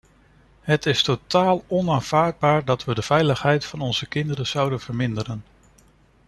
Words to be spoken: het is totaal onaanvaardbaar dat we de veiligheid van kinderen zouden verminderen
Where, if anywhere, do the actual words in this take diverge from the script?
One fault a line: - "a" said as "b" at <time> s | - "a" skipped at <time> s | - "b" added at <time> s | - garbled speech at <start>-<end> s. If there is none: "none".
- "onze" added at 3.8 s